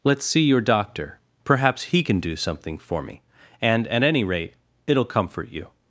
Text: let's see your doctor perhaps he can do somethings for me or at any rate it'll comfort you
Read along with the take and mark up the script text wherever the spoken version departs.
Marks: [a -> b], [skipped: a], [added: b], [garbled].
let's see your doctor perhaps he can do [somethings -> something] for me [or -> and] at any rate it'll comfort you